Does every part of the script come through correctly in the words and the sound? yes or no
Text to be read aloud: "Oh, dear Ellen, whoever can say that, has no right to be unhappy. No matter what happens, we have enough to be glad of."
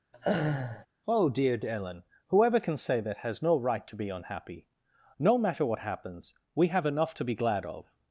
no